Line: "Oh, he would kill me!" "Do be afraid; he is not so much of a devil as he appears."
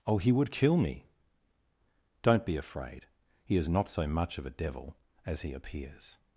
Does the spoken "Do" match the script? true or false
false